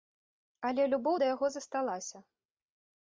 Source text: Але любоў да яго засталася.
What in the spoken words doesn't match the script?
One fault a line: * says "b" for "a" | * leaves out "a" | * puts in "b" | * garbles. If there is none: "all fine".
all fine